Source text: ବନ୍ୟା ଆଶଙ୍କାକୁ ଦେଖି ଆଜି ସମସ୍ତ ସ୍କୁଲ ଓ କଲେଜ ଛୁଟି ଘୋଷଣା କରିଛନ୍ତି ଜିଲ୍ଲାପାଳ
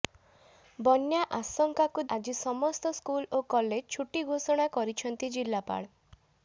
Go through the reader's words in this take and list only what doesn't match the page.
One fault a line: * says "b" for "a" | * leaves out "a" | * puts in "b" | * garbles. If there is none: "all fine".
* leaves out "ଦେଖି"